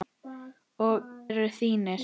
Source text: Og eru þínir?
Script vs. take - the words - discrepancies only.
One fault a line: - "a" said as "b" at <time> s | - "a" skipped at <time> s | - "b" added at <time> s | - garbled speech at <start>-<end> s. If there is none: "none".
none